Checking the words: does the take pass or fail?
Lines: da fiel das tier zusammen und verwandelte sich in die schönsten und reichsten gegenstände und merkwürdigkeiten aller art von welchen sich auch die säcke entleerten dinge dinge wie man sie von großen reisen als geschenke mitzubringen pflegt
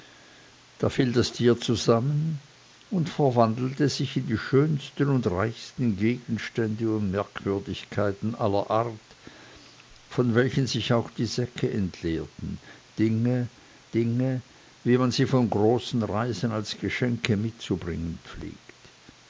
pass